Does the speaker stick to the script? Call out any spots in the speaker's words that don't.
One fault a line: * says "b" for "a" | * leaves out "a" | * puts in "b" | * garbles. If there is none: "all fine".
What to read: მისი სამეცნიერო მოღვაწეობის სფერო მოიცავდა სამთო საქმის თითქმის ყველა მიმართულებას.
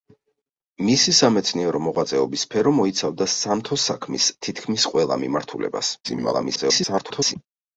* garbles